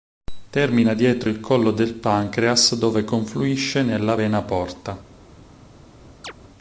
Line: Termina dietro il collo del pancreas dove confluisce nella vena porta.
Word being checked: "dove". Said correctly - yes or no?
yes